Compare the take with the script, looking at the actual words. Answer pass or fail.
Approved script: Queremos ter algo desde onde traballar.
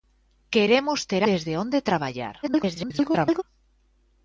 fail